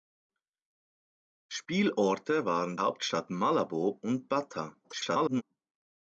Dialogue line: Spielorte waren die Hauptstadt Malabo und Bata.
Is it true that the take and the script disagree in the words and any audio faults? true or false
true